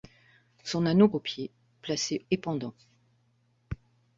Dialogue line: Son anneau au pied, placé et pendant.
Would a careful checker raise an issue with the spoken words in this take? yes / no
no